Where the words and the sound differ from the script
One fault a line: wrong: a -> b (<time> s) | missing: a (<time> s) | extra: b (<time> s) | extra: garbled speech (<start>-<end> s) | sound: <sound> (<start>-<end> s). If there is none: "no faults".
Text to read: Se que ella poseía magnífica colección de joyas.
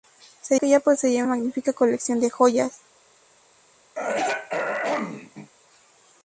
sound: throat clearing (4.0-5.5 s)